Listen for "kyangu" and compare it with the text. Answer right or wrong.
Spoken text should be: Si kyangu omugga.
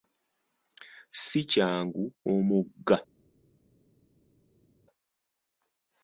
right